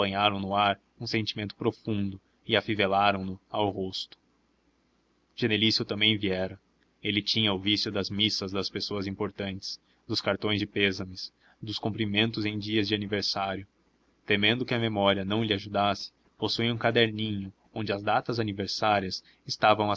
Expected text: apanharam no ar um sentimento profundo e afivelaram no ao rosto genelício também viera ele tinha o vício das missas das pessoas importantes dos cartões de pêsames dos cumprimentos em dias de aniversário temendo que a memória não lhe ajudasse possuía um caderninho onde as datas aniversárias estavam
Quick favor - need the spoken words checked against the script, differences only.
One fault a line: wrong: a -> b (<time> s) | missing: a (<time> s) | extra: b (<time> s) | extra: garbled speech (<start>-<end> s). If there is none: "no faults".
no faults